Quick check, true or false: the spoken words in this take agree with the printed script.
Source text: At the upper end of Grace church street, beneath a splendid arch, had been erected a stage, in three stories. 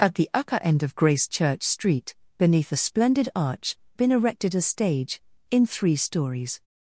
false